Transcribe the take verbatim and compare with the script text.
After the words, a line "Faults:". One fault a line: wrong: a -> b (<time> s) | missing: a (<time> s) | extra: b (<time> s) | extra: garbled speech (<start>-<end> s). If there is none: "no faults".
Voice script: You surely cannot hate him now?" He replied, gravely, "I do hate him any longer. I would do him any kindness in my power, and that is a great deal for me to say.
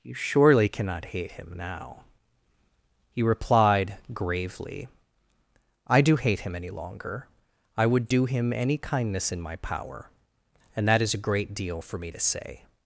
You surely cannot hate him now?" He replied, gravely, "I do hate him any longer. I would do him any kindness in my power, and that is a great deal for me to say.
Faults:
no faults